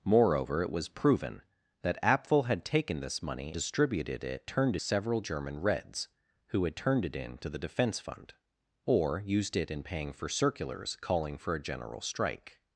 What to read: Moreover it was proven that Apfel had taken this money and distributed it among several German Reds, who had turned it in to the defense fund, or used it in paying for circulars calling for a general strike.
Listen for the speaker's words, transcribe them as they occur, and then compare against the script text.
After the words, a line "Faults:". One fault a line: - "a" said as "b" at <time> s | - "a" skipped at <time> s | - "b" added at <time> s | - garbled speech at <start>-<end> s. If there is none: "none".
Moreover it was proven that Apfel had taken this money distributed it turned several German Reds, who had turned it in to the defense fund, or used it in paying for circulars calling for a general strike.
Faults:
- "and" skipped at 3.5 s
- "among" said as "turned" at 4.5 s